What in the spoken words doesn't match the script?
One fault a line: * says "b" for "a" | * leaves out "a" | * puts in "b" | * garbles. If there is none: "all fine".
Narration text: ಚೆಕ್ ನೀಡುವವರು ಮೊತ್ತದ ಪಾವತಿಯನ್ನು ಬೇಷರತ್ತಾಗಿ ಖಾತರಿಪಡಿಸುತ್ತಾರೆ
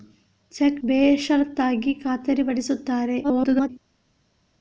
* leaves out "ನೀಡುವವರು ಮೊತ್ತದ ಪಾವತಿಯನ್ನು"
* garbles